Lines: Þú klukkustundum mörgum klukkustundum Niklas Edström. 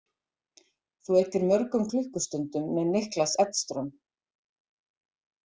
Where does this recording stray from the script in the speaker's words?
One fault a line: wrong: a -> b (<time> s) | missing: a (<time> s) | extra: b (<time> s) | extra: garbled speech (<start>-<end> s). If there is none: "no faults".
wrong: klukkustundum -> eyddir (1.2 s)
extra: með (2.8 s)